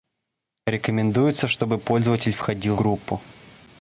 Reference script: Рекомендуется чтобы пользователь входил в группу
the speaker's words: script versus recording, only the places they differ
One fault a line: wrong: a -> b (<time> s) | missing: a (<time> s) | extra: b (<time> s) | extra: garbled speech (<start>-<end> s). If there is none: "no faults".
missing: в (2.8 s)